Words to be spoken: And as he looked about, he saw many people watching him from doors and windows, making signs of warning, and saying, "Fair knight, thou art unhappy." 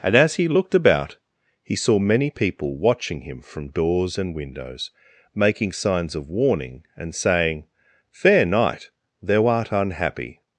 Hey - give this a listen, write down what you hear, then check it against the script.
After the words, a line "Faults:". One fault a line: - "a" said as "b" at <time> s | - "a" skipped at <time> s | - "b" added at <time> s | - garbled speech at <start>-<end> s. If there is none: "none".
And as he looked about, he saw many people watching him from doors and windows, making signs of warning, and saying, "Fair knight, thou art unhappy."
Faults:
none